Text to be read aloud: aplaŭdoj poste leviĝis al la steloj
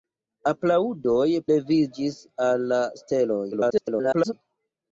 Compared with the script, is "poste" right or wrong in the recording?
wrong